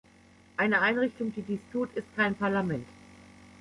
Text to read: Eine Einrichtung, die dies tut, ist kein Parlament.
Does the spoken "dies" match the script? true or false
true